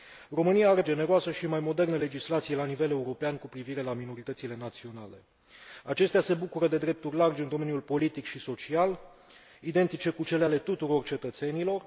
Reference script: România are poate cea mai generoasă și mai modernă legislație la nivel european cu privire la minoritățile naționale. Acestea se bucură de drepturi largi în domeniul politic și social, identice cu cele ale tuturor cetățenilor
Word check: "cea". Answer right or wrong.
wrong